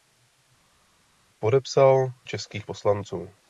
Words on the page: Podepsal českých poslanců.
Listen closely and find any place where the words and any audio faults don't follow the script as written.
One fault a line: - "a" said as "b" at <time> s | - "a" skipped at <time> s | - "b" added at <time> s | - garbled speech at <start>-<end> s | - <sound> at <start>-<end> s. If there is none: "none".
none